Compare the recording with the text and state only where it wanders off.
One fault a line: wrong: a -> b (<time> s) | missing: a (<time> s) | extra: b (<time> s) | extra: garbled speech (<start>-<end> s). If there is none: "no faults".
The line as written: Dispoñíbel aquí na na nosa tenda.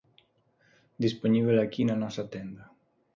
missing: na (2.0 s)